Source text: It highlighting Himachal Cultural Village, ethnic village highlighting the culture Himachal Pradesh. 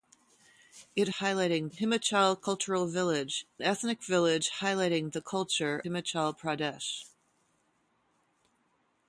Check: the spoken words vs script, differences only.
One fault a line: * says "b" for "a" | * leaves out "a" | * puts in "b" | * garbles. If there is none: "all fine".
all fine